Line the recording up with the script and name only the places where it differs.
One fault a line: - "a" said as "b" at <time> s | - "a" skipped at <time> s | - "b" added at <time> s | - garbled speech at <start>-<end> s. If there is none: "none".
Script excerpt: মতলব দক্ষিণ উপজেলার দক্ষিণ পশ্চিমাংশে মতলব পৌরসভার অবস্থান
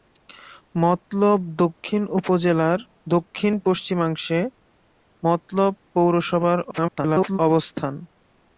- garbled speech at 6.7-7.4 s